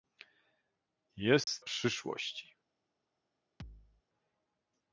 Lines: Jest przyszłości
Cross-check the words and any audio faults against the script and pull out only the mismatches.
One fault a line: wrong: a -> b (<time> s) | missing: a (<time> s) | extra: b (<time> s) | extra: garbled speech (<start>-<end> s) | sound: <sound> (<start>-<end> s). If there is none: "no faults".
sound: dropout (1.4-1.5 s)
sound: thud (3.6-4.0 s)